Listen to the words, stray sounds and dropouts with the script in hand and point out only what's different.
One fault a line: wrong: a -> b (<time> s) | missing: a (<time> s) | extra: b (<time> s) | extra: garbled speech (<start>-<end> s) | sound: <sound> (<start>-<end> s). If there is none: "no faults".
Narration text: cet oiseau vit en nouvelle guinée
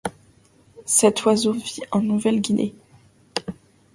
no faults